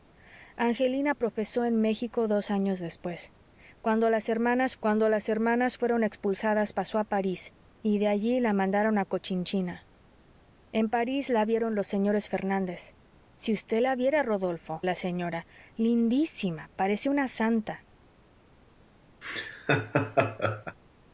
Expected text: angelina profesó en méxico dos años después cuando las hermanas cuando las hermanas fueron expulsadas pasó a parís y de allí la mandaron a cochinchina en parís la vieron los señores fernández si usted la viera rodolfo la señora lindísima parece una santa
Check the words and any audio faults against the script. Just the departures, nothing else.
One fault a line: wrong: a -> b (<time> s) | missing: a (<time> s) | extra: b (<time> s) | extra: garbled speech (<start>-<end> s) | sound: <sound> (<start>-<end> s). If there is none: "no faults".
sound: laugh (19.2-20.8 s)